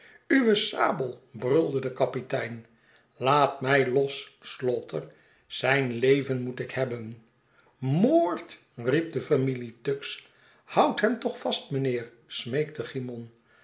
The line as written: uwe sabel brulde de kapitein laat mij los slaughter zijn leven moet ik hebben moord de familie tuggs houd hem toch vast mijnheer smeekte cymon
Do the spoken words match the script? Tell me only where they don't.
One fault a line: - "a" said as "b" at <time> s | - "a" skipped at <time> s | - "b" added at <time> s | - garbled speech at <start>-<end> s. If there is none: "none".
- "riep" added at 8.8 s